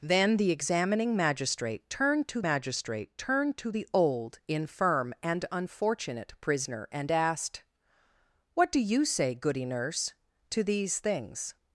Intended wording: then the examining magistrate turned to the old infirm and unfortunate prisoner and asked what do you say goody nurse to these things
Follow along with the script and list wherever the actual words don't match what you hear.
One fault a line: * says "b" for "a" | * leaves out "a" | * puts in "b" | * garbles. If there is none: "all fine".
* puts in "magistrate turned to"